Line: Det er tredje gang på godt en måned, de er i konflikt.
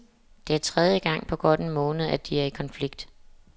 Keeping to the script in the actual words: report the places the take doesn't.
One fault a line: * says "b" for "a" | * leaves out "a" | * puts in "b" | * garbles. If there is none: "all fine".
* puts in "at"